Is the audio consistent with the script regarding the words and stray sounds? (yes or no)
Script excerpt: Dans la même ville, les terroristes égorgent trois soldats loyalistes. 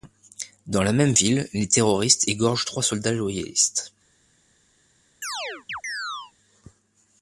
no